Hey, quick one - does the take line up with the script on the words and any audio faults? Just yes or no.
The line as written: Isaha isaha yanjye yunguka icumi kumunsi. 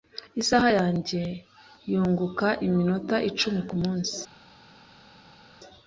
no